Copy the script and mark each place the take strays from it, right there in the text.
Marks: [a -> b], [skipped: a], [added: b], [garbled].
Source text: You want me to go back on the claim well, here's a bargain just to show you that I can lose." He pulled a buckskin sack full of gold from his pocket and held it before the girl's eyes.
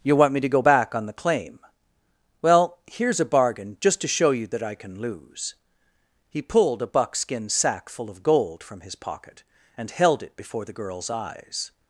You want me to go back on the claim well, here's a bargain just to show you that I can lose." He pulled a buckskin sack full of gold from his pocket and held it before the girl's eyes.